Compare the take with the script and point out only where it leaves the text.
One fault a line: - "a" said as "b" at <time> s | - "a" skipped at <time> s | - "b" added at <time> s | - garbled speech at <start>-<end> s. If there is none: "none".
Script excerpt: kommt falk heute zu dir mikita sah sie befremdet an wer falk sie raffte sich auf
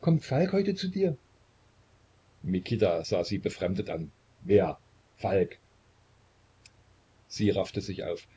none